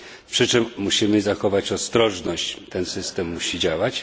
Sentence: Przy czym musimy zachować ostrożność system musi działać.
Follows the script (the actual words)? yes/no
no